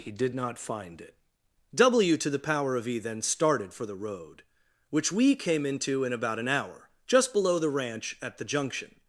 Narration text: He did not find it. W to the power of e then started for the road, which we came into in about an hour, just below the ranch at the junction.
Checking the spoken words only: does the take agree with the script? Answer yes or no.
yes